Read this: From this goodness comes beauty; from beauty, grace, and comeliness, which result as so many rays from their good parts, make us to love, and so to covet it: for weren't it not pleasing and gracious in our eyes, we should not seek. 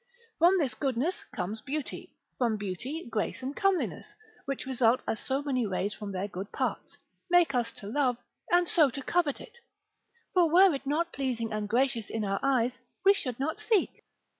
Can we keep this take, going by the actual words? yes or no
no